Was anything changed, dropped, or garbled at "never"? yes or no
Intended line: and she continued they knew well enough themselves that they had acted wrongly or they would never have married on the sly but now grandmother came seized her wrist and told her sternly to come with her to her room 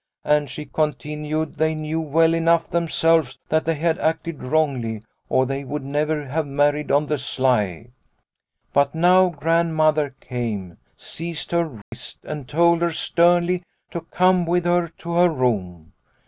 no